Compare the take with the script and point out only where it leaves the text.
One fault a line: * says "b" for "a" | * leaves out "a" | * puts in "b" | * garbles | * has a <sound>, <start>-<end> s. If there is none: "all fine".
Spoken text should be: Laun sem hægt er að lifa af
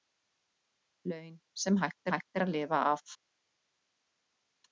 * puts in "hægt"